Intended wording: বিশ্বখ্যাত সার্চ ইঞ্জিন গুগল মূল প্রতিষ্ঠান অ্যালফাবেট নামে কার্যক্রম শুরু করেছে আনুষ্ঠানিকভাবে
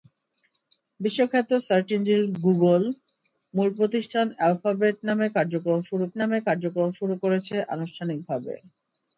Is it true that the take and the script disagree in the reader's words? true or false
true